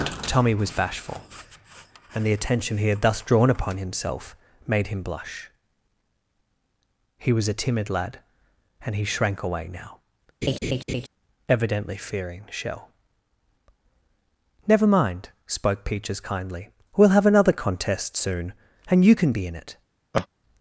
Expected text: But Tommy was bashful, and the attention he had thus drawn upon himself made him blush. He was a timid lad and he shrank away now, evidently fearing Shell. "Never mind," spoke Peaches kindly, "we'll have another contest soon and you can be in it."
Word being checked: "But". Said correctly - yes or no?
no